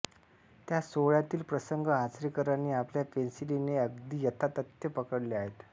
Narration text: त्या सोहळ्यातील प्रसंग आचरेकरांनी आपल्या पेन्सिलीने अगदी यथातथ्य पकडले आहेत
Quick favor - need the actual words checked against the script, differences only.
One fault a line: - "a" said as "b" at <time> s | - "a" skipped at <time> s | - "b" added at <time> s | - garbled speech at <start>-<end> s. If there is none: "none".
none